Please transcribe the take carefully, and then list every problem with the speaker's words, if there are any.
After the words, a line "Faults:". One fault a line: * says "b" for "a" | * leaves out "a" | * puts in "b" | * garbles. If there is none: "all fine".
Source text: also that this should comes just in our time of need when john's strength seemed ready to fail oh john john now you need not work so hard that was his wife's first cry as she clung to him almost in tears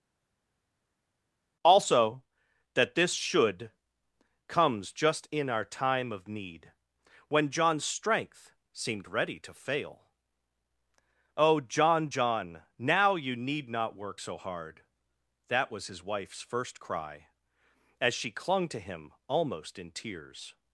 also that this should comes just in our time of need when john's strength seemed ready to fail oh john john now you need not work so hard that was his wife's first cry as she clung to him almost in tears
Faults:
all fine